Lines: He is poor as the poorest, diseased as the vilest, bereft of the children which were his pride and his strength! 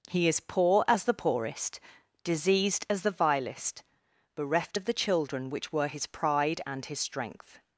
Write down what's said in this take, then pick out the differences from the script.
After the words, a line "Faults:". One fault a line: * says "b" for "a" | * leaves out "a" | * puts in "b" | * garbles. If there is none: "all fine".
He is poor as the poorest, diseased as the vilest, bereft of the children which were his pride and his strength!
Faults:
all fine